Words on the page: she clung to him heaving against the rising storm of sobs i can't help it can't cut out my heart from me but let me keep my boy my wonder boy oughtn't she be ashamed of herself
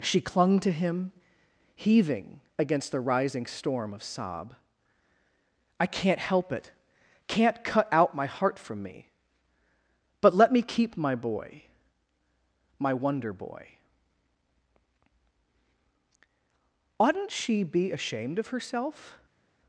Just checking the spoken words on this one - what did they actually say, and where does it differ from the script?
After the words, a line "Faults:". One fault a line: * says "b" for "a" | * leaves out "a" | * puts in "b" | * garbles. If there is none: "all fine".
she clung to him heaving against the rising storm of sob i can't help it can't cut out my heart from me but let me keep my boy my wonder boy oughtn't she be ashamed of herself
Faults:
* says "sob" for "sobs"